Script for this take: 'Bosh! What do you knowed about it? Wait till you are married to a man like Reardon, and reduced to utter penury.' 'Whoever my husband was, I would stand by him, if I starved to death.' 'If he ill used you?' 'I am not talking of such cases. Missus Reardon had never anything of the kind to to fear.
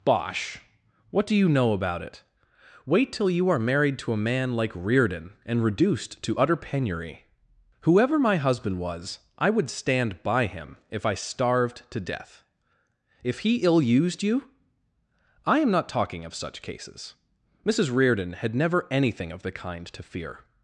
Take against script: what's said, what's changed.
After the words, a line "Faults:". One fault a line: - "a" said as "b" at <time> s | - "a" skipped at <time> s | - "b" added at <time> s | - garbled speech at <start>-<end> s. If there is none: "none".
'Bosh! What do you know about it? Wait till you are married to a man like Reardon, and reduced to utter penury.' 'Whoever my husband was, I would stand by him, if I starved to death.' 'If he ill used you?' 'I am not talking of such cases. Missus Reardon had never anything of the kind to fear.
Faults:
- "knowed" said as "know" at 1.5 s
- "to" skipped at 20.0 s